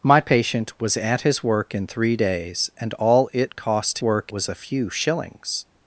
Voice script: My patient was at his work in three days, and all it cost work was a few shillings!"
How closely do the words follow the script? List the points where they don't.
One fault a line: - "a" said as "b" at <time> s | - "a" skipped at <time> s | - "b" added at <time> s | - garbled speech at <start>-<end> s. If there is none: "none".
none